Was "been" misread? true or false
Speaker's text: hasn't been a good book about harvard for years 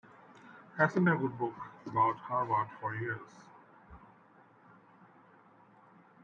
true